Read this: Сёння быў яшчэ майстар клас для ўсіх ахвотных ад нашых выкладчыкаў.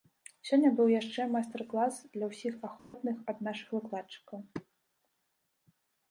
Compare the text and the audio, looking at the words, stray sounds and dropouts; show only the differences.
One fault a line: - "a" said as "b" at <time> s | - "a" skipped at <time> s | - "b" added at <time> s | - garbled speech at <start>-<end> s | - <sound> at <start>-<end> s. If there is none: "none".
- dropout at 2.8-2.9 s